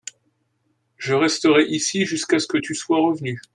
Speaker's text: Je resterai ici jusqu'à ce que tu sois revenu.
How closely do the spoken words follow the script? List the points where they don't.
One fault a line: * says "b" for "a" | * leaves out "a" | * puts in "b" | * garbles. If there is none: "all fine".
all fine